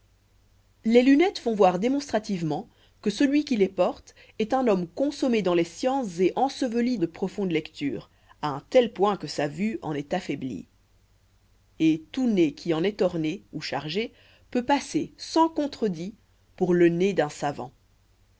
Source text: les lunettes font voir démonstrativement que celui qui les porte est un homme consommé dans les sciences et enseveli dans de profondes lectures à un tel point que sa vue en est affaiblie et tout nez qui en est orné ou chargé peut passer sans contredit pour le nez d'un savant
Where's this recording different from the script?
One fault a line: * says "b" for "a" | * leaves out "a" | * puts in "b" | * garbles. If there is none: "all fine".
* leaves out "dans"